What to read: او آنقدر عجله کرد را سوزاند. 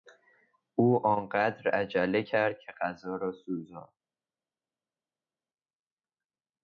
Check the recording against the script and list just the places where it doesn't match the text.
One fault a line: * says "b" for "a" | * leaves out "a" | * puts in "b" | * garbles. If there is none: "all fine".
* puts in "که غذا"